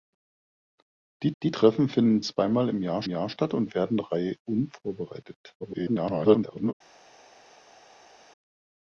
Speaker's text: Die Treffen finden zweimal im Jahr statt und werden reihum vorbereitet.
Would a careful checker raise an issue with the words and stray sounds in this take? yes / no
yes